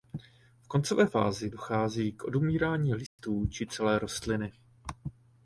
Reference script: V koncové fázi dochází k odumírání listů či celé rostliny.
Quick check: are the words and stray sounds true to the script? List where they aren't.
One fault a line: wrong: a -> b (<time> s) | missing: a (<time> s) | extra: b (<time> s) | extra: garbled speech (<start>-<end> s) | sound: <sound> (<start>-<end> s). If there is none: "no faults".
sound: dropout (3.1-3.2 s)